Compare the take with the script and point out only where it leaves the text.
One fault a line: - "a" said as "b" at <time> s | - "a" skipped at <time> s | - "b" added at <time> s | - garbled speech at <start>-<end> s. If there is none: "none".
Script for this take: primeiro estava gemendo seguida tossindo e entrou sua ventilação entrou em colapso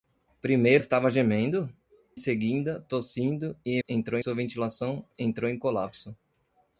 none